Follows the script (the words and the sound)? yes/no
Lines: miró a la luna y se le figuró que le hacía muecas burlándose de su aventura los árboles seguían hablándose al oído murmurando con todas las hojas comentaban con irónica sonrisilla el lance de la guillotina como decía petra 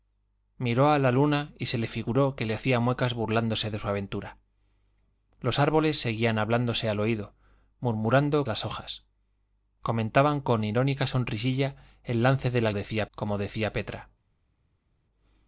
no